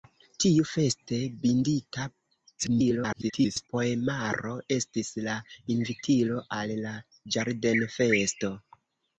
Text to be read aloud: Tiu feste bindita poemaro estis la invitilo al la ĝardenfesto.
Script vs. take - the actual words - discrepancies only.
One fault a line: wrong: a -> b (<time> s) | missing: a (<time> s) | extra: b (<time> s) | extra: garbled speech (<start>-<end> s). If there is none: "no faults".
extra: garbled speech (2.6-3.7 s)